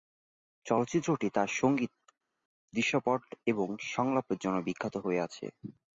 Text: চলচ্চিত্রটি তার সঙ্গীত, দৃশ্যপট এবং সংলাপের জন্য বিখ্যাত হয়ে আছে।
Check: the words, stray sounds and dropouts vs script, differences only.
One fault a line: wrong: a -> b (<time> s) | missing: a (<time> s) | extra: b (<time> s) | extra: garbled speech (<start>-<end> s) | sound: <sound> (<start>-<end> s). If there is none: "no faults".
no faults